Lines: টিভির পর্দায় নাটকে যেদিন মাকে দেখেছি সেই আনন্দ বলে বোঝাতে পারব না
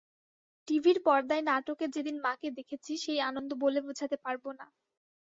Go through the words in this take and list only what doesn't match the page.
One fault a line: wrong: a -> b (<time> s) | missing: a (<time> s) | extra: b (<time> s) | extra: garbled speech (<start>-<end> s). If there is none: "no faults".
no faults